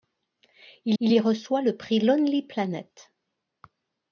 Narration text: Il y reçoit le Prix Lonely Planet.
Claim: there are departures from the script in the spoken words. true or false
true